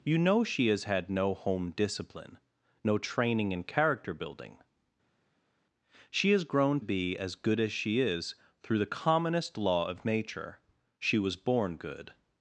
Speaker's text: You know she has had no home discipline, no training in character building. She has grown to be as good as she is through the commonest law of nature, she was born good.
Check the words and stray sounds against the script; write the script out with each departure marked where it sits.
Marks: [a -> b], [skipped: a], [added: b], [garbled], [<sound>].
You know she has had no home discipline, no training in character building. She has grown [skipped: to] be as good as she is through the commonest law of nature, she was born good.